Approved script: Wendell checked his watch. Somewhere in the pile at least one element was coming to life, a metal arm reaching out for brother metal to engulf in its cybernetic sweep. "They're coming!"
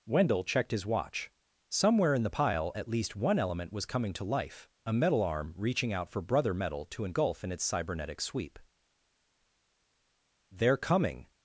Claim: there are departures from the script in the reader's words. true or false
false